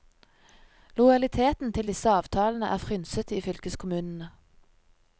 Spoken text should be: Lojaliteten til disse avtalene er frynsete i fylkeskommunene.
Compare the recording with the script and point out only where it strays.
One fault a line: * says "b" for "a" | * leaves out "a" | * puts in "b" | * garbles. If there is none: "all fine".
all fine